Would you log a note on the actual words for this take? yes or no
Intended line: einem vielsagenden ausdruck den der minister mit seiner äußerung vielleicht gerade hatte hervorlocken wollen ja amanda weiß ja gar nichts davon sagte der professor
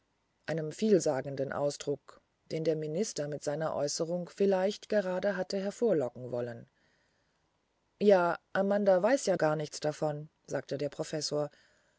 no